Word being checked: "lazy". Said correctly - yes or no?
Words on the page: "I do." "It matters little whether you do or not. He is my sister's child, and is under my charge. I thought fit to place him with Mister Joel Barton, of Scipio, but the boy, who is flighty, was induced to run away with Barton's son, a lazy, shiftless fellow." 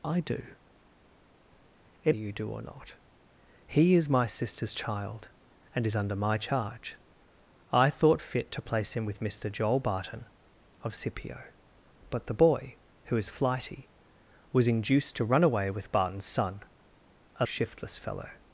no